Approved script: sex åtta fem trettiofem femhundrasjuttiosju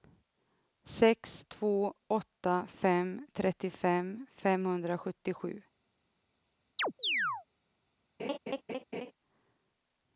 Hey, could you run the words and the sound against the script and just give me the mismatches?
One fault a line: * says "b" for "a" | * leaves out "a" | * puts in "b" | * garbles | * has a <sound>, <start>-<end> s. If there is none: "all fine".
* puts in "två"
* has a chirp, 6.8-7.5 s
* has a laugh, 8.2-9.1 s